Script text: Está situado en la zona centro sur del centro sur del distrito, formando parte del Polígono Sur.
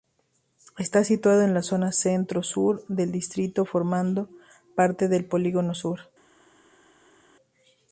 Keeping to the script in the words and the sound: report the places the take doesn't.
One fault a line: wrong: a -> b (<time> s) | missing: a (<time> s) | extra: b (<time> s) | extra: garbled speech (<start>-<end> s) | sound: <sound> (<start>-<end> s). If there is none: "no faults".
missing: centro sur del (3.1 s)